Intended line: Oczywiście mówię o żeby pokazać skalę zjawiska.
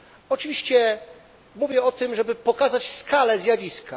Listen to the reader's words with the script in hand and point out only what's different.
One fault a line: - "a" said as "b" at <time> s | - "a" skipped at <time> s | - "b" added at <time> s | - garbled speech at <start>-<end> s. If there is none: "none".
- "tym" added at 1.9 s